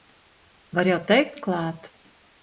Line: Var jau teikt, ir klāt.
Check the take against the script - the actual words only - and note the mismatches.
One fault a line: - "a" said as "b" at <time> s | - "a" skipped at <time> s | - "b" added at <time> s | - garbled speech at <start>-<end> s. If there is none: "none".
none